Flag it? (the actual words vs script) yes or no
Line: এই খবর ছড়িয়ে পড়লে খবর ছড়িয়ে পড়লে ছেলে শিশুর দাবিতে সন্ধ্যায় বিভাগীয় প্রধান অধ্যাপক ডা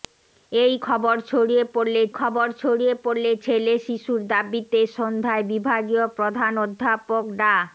no